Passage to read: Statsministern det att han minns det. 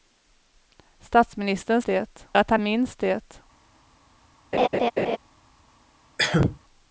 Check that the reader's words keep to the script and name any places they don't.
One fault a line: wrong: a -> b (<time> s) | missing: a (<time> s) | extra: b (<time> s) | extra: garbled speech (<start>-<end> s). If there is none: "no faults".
no faults